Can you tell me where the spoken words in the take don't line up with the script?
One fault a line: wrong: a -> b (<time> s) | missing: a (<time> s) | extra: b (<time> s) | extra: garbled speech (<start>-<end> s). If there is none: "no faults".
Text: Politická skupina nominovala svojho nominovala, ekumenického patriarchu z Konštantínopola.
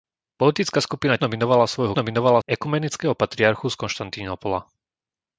no faults